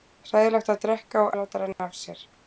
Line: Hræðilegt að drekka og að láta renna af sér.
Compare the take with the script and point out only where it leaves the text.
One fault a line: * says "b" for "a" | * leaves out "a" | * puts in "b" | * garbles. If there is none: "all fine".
all fine